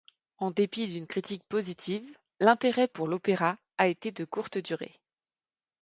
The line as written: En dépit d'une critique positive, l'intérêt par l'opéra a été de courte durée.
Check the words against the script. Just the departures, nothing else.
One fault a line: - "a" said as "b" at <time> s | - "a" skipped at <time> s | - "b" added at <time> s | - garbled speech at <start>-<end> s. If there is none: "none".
- "par" said as "pour" at 2.9 s